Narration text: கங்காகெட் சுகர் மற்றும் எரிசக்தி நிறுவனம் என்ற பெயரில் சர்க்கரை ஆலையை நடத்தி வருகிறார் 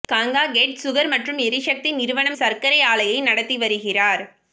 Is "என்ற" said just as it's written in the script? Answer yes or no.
no